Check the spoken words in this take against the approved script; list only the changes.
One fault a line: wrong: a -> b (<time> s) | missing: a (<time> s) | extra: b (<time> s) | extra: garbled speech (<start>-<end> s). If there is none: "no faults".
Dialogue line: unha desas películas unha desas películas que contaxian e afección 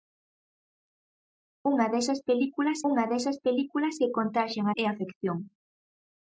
no faults